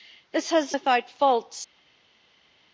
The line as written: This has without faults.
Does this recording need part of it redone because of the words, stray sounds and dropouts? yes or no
no